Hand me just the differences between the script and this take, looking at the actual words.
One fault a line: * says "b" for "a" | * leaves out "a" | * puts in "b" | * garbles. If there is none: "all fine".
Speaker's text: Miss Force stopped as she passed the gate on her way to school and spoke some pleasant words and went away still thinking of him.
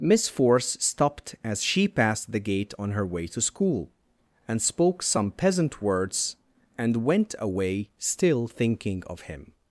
* says "peasant" for "pleasant"